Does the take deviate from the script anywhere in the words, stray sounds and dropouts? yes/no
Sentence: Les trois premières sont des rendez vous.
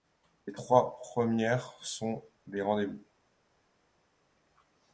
no